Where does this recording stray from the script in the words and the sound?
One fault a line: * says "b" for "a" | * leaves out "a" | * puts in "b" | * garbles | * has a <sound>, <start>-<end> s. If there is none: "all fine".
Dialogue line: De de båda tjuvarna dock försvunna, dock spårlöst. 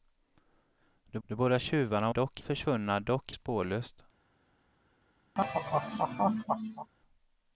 * has a laugh, 5.4-6.9 s